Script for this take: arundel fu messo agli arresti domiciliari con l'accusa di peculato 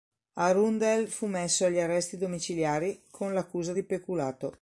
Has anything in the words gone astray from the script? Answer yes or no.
no